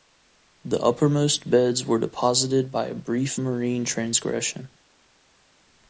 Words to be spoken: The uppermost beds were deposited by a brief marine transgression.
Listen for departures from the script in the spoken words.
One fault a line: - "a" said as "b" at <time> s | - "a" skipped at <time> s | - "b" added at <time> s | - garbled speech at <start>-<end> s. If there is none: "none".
none